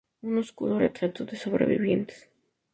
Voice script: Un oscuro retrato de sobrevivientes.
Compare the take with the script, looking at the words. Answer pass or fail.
pass